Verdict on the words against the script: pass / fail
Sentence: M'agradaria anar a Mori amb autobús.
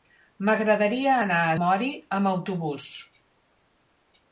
pass